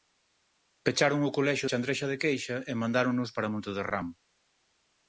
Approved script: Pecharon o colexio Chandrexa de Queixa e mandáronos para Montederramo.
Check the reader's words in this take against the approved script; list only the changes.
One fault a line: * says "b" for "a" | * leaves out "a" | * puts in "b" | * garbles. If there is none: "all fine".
all fine